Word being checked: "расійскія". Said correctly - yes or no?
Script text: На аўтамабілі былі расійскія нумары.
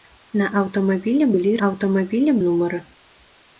no